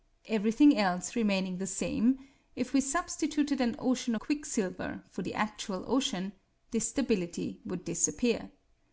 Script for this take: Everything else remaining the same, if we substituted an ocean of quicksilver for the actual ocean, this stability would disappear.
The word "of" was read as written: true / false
false